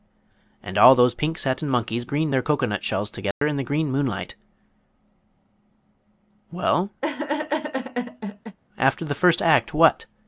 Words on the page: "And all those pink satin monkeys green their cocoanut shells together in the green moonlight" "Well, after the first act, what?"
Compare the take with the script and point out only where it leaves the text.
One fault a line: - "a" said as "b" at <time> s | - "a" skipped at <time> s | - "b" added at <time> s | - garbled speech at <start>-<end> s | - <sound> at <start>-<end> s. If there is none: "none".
- dropout at 3.3-3.4 s
- laugh at 7.0-8.6 s